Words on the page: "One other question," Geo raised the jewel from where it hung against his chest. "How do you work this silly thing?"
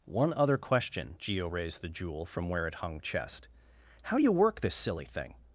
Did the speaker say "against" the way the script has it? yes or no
no